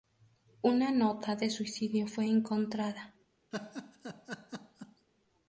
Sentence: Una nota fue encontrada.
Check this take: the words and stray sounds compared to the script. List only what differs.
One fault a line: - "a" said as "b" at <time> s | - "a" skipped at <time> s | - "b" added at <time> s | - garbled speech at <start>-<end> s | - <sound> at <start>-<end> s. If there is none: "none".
- "de suicidio" added at 1.4 s
- laugh at 3.5-5.1 s